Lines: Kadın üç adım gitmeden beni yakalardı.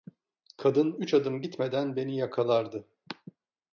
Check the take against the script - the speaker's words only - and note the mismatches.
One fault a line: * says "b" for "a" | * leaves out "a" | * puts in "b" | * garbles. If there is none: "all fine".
all fine